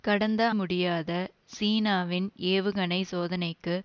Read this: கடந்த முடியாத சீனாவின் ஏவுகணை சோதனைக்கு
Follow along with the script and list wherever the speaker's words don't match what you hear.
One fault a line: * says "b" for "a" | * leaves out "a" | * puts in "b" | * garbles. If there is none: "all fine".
all fine